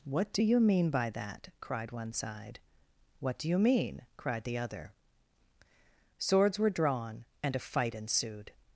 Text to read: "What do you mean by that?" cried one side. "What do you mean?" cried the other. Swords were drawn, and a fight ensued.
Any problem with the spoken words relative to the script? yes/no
no